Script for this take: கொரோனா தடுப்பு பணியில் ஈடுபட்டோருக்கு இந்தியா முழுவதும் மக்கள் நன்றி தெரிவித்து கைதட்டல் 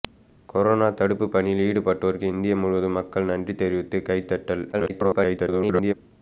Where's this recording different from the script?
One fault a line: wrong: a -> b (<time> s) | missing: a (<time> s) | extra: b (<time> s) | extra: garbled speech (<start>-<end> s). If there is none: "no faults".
extra: garbled speech (4.7-5.9 s)